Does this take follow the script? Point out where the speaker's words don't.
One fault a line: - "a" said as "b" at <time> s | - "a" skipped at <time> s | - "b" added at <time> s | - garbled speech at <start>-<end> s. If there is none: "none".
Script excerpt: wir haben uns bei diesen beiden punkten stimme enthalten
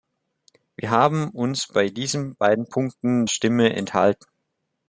none